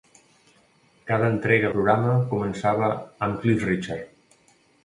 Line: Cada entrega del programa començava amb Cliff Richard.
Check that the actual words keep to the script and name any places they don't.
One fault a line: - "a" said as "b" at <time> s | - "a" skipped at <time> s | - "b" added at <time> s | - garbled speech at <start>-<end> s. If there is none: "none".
- "del" skipped at 1.7 s